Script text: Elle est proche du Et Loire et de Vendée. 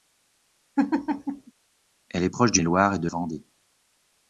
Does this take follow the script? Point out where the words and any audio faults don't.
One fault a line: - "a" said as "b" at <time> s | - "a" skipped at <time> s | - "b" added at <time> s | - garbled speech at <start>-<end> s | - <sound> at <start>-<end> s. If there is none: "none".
- laugh at 0.8-1.5 s